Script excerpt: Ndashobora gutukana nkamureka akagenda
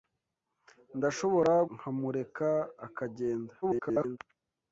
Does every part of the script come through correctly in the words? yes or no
no